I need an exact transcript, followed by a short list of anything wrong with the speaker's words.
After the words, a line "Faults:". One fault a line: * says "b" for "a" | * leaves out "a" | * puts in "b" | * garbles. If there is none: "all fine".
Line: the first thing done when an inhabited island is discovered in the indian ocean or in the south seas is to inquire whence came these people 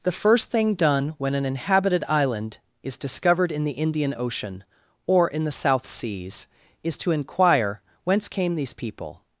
the first thing done when an inhabited island is discovered in the indian ocean or in the south seas is to inquire whence came these people
Faults:
all fine